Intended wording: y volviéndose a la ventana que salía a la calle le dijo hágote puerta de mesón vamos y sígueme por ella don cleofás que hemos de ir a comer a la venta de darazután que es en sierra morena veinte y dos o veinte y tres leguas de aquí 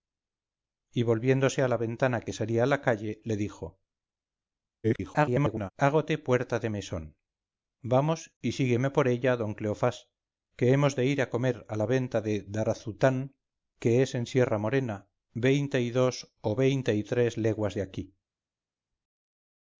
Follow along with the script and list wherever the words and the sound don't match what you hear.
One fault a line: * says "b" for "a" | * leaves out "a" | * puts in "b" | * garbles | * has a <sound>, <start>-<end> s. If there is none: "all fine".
* garbles